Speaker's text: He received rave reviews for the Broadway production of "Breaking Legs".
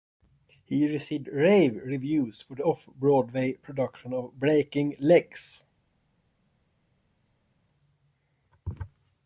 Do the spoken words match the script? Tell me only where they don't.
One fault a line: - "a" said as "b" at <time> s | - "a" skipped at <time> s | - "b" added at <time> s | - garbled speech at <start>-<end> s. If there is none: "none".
- "off" added at 2.6 s